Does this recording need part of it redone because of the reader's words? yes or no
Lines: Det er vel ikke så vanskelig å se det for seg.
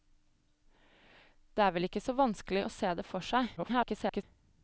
yes